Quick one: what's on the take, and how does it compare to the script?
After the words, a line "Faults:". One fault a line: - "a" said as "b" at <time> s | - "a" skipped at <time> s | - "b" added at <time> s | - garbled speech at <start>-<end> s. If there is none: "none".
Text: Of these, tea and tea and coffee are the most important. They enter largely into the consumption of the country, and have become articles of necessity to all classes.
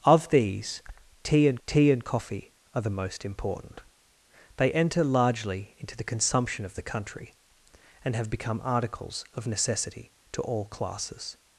Of these, tea and tea and coffee are the most important. They enter largely into the consumption of the country, and have become articles of necessity to all classes.
Faults:
none